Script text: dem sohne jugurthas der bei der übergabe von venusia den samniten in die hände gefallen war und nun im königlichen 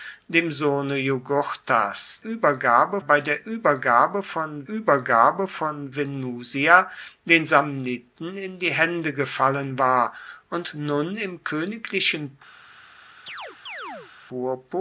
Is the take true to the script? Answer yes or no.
no